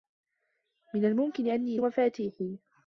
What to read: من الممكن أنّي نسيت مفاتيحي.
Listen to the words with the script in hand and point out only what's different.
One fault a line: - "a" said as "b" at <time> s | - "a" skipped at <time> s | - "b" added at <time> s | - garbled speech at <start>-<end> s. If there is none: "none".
- "نسيت" skipped at 1.8 s